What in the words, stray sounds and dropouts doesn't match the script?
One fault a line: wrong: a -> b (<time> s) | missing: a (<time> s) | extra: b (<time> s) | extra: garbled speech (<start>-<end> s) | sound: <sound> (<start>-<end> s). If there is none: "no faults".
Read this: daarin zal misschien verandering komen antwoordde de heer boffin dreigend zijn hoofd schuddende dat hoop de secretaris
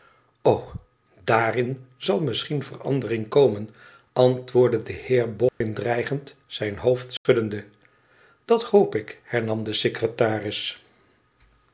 sound: dropout (5.5-5.6 s)
sound: dropout (7.2-7.3 s)
extra: ik hernam (8.9 s)